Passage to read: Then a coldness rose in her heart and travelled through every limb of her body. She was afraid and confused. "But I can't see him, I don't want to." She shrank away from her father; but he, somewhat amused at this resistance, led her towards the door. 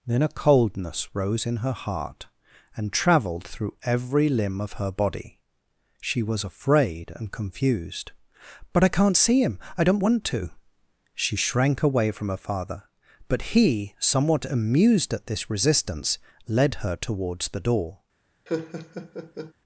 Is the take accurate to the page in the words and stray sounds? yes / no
no